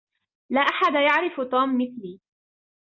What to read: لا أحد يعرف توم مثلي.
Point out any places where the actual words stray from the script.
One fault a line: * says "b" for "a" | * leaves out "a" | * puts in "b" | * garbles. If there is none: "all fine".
all fine